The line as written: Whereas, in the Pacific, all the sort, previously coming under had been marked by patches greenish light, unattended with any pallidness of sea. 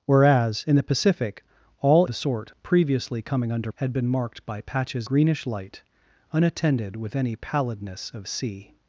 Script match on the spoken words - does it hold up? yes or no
yes